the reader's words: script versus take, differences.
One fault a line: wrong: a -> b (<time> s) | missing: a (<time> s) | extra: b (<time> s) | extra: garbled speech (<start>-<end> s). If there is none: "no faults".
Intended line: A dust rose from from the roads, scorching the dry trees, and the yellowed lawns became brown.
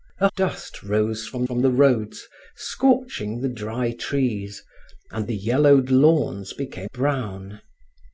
no faults